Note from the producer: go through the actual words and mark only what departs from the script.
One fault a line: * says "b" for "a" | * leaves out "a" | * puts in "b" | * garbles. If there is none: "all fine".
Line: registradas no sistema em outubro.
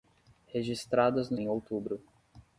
* leaves out "sistema"